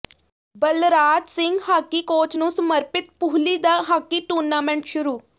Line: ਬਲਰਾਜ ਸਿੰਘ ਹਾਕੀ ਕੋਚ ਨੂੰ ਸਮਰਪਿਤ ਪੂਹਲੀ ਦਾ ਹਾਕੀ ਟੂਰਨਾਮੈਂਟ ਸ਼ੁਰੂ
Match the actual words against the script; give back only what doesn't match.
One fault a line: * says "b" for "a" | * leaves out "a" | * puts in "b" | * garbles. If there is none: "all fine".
all fine